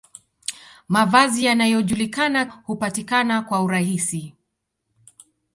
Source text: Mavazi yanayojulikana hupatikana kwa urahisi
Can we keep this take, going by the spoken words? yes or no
yes